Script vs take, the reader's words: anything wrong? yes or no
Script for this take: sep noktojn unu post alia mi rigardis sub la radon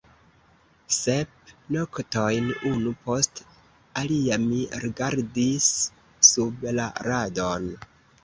no